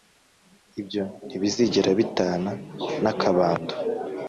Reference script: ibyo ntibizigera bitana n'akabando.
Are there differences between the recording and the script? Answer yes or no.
no